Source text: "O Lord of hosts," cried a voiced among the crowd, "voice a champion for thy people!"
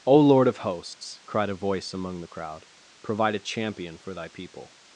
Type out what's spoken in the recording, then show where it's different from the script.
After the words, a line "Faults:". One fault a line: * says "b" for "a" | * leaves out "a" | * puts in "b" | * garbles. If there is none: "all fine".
"O Lord of hosts," cried a voice among the crowd, "provide a champion for thy people!"
Faults:
* says "voice" for "voiced"
* says "provide" for "voice"